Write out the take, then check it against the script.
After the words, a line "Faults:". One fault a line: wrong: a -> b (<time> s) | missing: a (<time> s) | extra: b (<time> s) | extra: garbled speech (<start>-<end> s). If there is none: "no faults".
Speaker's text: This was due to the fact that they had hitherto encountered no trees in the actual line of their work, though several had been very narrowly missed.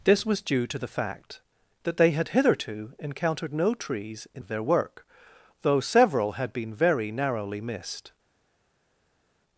This was due to the fact that they had hitherto encountered no trees in of their work, though several had been very narrowly missed.
Faults:
missing: the actual line (4.4 s)